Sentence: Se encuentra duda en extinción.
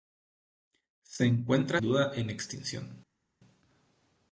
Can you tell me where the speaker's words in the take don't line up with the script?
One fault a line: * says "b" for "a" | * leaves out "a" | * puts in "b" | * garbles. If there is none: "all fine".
all fine